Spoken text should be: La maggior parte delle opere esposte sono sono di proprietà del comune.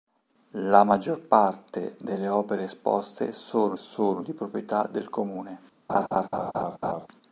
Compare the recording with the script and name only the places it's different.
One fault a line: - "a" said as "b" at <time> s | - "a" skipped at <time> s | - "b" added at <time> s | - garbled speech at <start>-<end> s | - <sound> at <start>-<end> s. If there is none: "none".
- laugh at 5.9-7.1 s